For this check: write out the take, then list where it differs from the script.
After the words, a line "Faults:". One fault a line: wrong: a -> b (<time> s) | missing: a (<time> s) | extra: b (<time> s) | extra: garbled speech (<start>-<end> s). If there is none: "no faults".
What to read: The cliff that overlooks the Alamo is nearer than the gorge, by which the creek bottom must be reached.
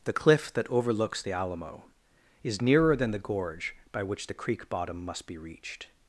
The cliff that overlooks the Alamo is nearer than the gorge, by which the creek bottom must be reached.
Faults:
no faults